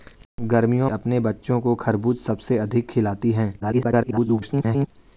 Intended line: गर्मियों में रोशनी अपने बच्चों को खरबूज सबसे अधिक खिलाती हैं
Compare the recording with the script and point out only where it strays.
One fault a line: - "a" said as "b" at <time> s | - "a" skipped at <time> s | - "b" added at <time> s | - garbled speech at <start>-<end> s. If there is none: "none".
- "में रोशनी" skipped at 0.9 s
- garbled speech at 3.6-4.9 s